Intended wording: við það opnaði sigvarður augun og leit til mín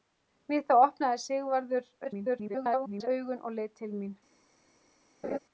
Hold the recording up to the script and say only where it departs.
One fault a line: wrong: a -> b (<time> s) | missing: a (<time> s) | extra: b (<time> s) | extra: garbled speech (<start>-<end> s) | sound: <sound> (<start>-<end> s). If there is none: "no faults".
extra: garbled speech (2.0-3.1 s)
sound: laugh (5.2-5.4 s)